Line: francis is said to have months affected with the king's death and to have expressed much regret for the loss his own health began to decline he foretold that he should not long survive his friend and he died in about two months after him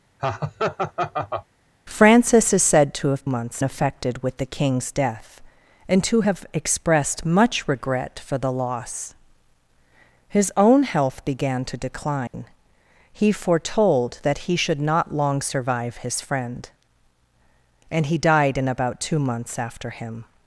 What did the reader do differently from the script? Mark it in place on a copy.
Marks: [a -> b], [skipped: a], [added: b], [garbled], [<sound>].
[laugh] francis is said to have months affected with the king's death and to have expressed much regret for the loss his own health began to decline [dropout] he foretold that he should not long survive his friend and he died in about two months after him